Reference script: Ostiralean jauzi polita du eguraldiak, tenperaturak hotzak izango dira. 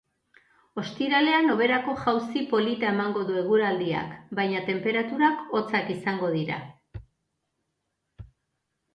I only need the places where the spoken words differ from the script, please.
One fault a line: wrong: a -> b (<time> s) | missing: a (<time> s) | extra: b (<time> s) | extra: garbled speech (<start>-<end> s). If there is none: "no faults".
extra: hoberako (1.5 s)
extra: emango (2.9 s)
extra: baina (4.4 s)